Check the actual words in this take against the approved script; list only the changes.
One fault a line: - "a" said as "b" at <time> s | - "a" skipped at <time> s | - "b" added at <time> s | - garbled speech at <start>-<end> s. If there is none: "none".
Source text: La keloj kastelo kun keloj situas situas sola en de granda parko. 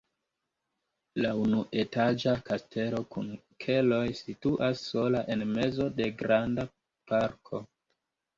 - "keloj" said as "unuetaĝa" at 1.4 s
- "situas" skipped at 4.8 s
- "mezo" added at 5.5 s